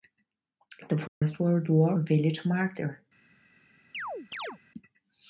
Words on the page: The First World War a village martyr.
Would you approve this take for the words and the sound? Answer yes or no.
no